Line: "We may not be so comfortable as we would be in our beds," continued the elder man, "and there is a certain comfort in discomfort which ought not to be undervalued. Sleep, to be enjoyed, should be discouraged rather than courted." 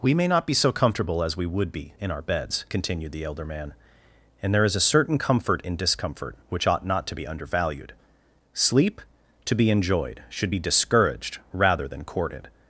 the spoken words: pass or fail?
pass